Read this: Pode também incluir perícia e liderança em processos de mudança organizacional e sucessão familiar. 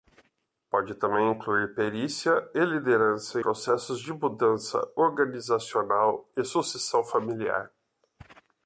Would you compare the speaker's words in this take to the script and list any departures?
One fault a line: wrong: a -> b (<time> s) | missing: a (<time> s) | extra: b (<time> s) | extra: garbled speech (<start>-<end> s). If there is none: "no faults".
missing: em (3.4 s)